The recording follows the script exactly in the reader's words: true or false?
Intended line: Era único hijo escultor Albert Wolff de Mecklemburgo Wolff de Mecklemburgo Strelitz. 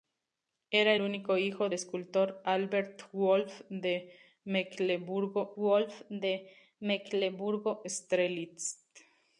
true